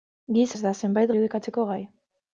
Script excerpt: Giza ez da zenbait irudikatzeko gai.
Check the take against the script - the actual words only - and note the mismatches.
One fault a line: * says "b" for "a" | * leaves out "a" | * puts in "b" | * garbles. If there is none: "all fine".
all fine